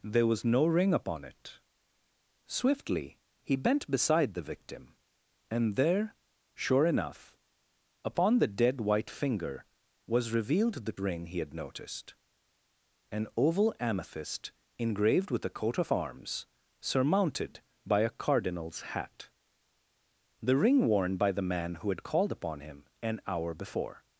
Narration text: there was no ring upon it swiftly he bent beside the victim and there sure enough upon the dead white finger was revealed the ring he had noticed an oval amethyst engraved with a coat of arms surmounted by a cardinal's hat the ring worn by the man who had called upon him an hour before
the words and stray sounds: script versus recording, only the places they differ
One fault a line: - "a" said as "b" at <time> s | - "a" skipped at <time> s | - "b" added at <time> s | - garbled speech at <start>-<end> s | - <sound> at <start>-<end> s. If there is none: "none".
none